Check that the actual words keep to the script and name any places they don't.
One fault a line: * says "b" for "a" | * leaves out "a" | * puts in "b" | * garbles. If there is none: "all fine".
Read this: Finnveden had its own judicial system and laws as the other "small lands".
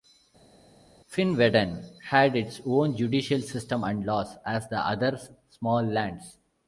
all fine